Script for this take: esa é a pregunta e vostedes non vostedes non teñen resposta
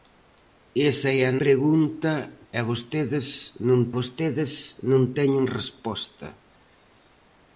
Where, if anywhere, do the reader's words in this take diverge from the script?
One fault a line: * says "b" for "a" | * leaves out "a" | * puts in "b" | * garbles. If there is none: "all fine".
all fine